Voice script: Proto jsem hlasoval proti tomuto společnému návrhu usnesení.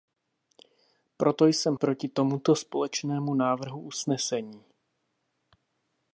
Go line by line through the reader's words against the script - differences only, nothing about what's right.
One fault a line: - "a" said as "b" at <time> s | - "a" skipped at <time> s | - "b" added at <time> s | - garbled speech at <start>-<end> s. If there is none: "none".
- "hlasoval" skipped at 1.8 s